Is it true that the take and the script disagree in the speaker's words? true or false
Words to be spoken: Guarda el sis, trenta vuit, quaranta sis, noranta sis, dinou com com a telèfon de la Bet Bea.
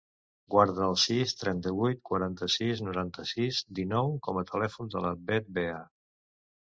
true